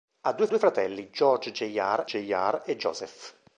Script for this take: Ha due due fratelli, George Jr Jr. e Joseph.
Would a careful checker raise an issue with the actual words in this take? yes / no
no